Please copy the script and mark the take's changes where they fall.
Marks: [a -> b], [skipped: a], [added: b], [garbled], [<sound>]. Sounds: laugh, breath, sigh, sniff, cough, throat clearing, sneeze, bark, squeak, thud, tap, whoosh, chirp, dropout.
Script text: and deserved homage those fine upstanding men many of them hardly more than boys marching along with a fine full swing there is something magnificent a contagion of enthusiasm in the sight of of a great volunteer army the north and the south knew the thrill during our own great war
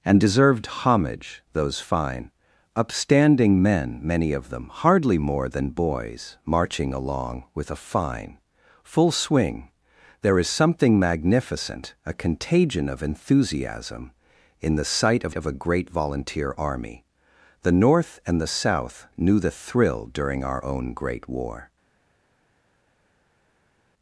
and deserved homage those fine upstanding men many of them hardly more than boys marching along with a fine full swing there is something magnificent a contagion of enthusiasm in the sight of of a great volunteer army the north and the south knew the thrill during our own great war